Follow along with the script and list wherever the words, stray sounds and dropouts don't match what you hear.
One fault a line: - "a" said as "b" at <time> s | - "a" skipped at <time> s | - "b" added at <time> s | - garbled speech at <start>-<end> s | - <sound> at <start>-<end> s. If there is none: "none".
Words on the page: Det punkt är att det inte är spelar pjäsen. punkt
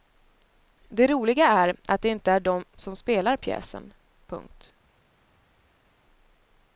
- "punkt" said as "roliga" at 1.1 s
- "de som" added at 2.4 s